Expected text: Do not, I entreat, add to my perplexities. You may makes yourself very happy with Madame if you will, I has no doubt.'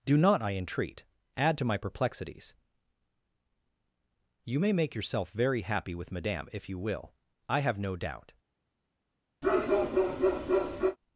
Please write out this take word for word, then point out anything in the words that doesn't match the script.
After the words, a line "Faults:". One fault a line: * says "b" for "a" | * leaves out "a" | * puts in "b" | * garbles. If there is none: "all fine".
Do not, I entreat, add to my perplexities. You may make yourself very happy with Madame if you will, I have no doubt.'
Faults:
* says "make" for "makes"
* says "have" for "has"